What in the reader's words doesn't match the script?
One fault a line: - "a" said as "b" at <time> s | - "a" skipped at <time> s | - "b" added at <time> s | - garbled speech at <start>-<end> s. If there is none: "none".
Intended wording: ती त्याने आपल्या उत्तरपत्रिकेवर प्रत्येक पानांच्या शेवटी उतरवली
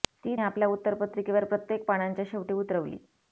- "त्याने" skipped at 0.3 s